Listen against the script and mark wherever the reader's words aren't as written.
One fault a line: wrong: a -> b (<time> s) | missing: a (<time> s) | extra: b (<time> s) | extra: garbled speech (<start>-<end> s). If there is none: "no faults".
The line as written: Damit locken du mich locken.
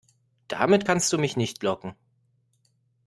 wrong: locken -> kannst (0.8 s)
extra: nicht (1.3 s)